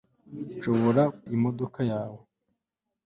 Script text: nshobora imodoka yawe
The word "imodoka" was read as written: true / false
true